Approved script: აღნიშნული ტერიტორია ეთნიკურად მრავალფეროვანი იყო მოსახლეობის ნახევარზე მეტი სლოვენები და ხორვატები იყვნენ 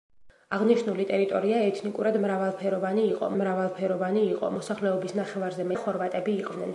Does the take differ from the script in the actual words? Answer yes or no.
yes